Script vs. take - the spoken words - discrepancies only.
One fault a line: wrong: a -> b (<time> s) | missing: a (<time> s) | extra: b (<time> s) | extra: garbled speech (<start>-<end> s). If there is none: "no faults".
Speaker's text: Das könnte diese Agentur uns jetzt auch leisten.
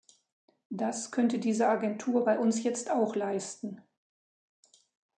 extra: bei (2.2 s)